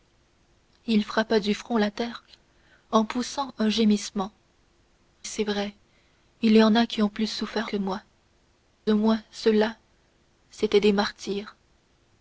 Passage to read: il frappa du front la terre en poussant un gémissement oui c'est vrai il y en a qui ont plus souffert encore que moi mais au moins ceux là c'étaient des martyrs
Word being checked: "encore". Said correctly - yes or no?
no